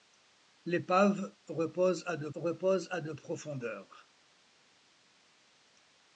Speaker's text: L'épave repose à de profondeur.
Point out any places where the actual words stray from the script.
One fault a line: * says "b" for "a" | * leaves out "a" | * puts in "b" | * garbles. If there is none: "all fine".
* puts in "repose à de"